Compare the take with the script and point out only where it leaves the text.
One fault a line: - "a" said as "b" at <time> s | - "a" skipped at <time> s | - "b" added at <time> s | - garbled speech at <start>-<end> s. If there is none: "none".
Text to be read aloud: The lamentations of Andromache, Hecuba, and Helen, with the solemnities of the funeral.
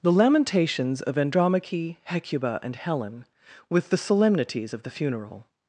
none